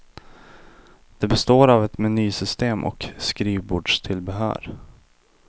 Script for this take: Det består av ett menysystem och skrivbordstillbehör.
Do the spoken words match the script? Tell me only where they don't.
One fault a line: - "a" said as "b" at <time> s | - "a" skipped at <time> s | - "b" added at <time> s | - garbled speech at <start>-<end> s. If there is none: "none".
none